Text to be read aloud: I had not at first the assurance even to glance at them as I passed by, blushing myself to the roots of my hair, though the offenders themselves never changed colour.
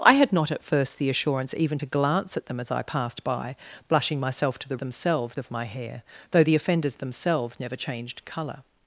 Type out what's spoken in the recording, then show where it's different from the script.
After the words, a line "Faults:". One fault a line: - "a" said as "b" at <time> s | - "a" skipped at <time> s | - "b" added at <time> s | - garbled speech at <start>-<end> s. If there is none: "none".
I had not at first the assurance even to glance at them as I passed by, blushing myself to the themselves of my hair, though the offenders themselves never changed colour.
Faults:
- "roots" said as "themselves" at 4.7 s